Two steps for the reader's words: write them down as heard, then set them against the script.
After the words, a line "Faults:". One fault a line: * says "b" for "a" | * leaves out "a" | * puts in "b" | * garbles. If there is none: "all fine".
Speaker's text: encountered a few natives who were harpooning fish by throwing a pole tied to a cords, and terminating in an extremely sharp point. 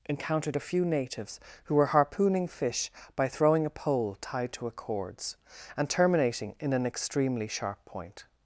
encountered a few natives who were harpooning fish by throwing a pole tied to a cords, and terminating in an extremely sharp point.
Faults:
all fine